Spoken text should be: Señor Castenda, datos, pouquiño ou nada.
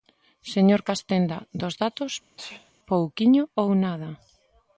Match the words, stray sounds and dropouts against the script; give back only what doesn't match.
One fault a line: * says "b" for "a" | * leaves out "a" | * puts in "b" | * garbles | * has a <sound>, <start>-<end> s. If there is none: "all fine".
* puts in "dos"
* has a sneeze, 2.4-2.7 s